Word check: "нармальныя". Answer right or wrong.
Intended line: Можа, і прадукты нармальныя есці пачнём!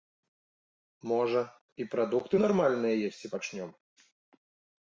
right